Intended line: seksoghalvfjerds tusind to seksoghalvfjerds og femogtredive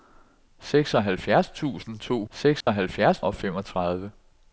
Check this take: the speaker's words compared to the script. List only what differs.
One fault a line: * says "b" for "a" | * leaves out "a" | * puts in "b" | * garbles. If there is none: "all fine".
all fine